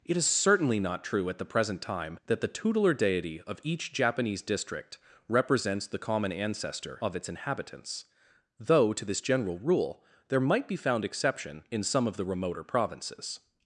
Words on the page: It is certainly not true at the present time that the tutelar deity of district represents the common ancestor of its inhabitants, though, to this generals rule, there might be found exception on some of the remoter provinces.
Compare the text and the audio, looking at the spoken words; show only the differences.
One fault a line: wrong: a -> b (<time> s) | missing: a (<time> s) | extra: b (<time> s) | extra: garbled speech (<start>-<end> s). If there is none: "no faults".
extra: each Japanese (3.6 s)
wrong: generals -> general (9.2 s)
wrong: on -> in (11.7 s)